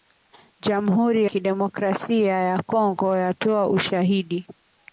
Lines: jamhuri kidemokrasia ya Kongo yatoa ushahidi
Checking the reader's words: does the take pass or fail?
pass